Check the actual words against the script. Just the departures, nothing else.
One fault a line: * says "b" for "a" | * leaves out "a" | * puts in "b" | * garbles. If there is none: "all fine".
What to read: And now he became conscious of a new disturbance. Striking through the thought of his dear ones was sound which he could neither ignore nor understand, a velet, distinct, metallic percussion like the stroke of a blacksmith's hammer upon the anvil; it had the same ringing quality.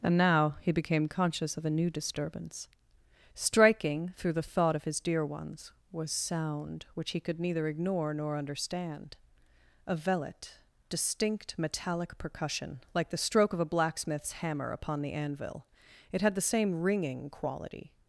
all fine